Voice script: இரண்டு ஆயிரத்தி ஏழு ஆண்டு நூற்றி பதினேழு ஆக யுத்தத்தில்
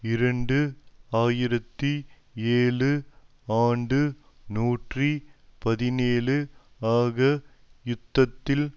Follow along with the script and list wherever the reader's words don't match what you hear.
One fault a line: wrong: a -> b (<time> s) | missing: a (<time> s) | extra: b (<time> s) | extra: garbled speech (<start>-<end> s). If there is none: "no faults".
no faults